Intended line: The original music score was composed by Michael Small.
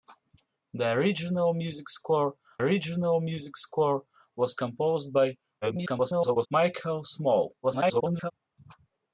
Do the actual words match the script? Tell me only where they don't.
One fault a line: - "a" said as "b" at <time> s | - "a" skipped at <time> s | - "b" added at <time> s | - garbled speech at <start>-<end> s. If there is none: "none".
- "original music score" added at 2.6 s
- garbled speech at 5.6-6.5 s
- garbled speech at 7.6-8.3 s